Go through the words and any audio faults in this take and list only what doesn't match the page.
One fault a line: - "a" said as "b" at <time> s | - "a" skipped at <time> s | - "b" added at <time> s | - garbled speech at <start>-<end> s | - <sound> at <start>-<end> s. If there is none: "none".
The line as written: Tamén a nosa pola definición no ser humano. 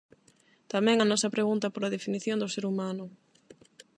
- "pregunta" added at 1.3 s
- "no" said as "do" at 2.4 s